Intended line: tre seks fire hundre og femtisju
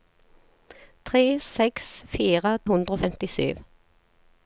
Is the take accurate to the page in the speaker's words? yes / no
yes